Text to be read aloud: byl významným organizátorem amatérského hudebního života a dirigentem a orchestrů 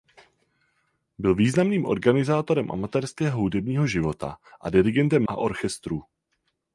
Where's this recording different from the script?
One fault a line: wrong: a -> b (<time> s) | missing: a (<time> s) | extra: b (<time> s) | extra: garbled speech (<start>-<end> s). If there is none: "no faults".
no faults